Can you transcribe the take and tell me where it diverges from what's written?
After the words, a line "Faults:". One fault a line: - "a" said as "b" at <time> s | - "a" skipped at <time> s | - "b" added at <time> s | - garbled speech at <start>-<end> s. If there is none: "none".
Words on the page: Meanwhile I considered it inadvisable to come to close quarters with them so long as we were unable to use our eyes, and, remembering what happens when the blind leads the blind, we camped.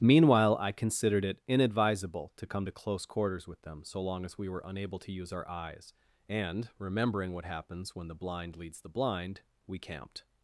Meanwhile I considered it inadvisable to come to close quarters with them so long as we were unable to use our eyes, and, remembering what happens when the blind leads the blind, we camped.
Faults:
none